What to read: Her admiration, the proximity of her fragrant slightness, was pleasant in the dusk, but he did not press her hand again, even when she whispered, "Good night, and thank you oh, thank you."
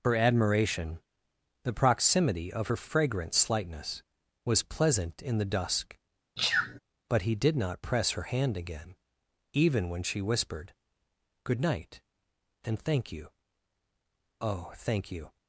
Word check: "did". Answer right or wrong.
right